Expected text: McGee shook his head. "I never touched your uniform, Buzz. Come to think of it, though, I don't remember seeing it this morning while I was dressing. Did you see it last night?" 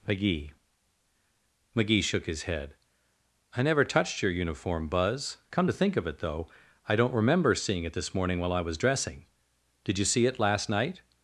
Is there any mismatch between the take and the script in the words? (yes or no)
yes